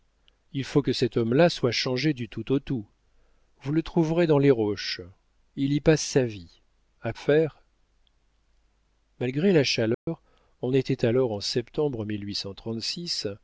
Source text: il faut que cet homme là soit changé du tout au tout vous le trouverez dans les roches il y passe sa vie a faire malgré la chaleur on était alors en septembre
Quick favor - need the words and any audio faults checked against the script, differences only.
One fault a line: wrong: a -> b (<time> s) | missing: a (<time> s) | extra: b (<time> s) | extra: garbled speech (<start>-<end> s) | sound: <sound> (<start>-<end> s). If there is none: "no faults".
sound: dropout (9.9-10.1 s)